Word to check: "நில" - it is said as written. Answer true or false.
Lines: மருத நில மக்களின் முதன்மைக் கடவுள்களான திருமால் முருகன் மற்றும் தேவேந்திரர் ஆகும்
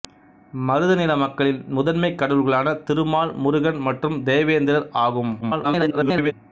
true